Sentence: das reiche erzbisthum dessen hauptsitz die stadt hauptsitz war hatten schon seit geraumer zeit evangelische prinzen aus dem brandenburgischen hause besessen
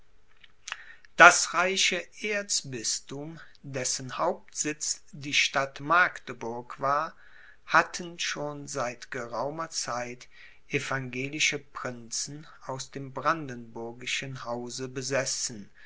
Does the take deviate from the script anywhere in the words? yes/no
yes